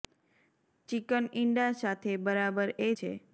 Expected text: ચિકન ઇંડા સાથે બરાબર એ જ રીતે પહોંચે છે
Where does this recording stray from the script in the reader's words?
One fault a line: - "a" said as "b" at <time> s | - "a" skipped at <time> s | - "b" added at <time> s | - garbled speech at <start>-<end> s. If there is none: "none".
- "જ રીતે પહોંચે" skipped at 2.9 s